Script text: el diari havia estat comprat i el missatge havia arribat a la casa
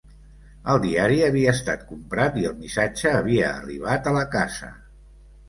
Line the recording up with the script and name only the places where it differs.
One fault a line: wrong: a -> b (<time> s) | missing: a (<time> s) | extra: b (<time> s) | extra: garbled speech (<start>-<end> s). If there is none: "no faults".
no faults